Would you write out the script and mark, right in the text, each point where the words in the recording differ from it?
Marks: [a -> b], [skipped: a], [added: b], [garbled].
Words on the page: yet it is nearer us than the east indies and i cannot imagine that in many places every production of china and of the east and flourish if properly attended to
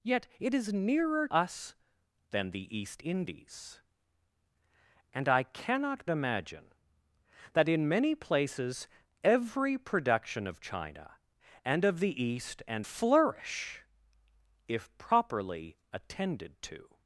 yet it is nearer us than the east indies and i cannot imagine that in many places every production of china and of the east and flourish if properly attended to